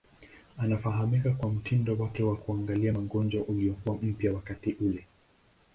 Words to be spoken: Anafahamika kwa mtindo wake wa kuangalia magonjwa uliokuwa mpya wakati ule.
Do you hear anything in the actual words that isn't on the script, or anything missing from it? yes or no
no